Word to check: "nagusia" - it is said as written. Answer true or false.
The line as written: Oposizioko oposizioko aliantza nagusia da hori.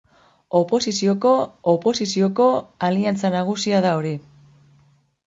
true